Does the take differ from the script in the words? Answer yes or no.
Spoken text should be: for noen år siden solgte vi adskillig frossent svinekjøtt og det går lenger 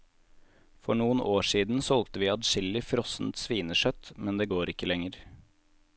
yes